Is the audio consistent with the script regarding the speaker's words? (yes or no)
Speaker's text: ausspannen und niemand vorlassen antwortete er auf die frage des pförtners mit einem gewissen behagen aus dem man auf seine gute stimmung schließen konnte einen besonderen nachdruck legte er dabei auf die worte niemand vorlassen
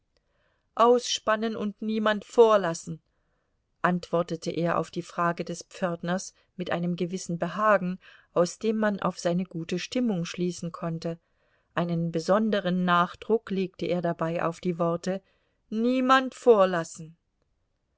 yes